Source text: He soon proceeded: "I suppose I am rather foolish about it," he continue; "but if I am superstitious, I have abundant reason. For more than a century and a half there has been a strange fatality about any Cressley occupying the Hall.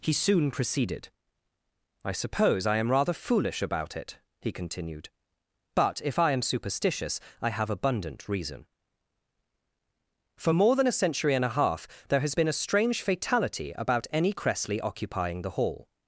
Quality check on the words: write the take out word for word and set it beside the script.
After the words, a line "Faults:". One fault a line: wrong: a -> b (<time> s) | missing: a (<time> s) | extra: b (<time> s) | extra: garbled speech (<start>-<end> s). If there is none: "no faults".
He soon proceeded: "I suppose I am rather foolish about it," he continued; "but if I am superstitious, I have abundant reason. For more than a century and a half there has been a strange fatality about any Cressley occupying the Hall.
Faults:
wrong: continue -> continued (4.5 s)